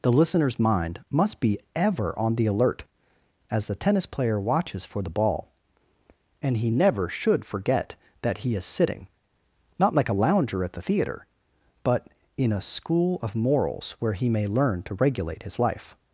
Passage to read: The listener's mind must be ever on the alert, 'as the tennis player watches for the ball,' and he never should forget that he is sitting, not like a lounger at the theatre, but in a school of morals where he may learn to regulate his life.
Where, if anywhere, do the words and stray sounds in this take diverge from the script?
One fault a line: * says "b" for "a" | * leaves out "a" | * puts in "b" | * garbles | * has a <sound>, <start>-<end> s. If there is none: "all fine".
all fine